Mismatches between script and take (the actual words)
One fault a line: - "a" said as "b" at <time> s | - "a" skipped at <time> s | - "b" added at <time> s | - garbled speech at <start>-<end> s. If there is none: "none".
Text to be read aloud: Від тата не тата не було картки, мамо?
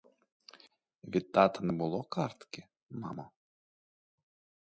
- "тата не" skipped at 1.7 s